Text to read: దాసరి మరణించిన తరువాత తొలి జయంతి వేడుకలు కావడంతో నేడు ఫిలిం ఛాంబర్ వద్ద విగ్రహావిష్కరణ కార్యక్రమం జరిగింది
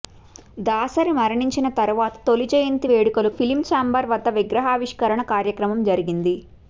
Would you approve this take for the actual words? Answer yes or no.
no